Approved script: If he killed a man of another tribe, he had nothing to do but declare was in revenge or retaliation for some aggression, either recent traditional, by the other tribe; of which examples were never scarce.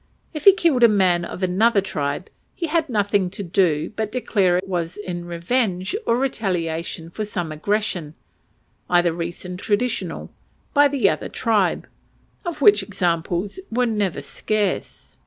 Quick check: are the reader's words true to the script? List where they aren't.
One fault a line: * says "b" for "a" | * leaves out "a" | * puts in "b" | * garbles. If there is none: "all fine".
all fine